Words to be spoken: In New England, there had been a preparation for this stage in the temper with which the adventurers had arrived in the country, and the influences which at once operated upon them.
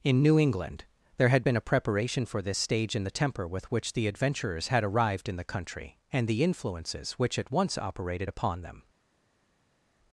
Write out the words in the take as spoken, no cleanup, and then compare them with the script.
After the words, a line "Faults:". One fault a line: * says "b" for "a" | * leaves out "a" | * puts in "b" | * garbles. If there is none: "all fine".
In New England, there had been a preparation for this stage in the temper with which the adventurers had arrived in the country, and the influences which at once operated upon them.
Faults:
all fine